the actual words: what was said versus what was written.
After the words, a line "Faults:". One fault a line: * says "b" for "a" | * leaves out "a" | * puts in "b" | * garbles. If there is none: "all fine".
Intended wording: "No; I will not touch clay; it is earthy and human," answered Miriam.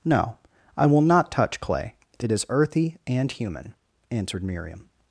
"No; I will not touch clay; it is earthy and human," answered Miriam.
Faults:
all fine